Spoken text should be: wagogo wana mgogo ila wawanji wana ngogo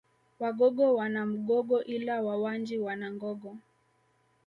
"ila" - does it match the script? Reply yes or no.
yes